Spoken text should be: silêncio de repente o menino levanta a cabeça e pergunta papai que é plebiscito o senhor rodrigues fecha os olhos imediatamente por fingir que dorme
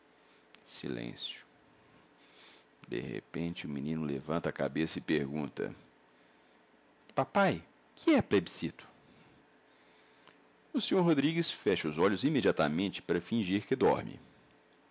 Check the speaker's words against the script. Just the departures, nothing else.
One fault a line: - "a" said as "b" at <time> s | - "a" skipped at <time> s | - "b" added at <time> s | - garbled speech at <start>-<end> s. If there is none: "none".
- "por" said as "para" at 13.0 s